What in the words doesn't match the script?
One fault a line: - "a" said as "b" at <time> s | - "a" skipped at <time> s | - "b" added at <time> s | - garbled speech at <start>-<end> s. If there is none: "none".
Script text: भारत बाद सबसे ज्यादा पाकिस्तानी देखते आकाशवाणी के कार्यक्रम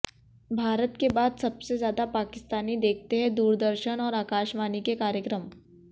- "के" added at 1.0 s
- "हैं दूरदर्शन और" added at 3.2 s